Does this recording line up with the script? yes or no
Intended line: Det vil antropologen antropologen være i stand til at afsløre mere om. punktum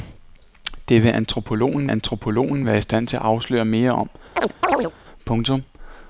yes